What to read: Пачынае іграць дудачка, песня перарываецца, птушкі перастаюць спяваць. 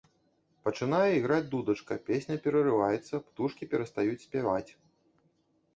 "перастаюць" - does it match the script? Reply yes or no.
yes